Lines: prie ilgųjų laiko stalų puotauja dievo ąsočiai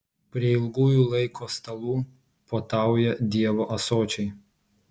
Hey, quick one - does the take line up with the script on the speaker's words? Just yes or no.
yes